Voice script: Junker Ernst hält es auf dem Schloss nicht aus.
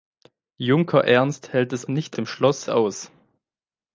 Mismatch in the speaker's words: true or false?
true